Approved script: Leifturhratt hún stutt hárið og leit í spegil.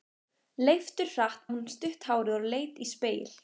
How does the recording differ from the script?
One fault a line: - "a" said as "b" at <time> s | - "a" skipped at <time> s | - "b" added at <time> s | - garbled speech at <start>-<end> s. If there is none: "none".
none